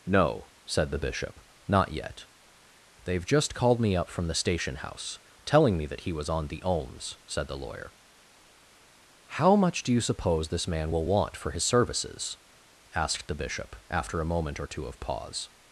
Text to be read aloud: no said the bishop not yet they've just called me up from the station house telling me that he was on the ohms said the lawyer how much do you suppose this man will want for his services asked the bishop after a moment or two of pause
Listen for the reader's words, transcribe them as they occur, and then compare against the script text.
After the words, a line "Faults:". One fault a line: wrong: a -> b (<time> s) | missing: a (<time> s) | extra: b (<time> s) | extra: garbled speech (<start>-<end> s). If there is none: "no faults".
no said the bishop not yet they've just called me up from the station house telling me that he was on the ohms said the lawyer how much do you suppose this man will want for his services asked the bishop after a moment or two of pause
Faults:
no faults